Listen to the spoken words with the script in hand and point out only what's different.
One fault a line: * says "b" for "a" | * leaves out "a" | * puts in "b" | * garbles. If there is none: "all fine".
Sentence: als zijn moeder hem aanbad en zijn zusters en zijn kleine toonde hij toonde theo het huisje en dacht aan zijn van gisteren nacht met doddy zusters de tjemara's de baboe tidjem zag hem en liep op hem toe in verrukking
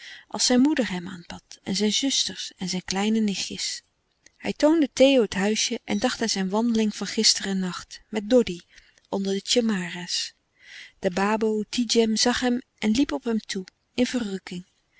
* says "nichtjes" for "toonde"
* puts in "wandeling"
* says "onder" for "zusters"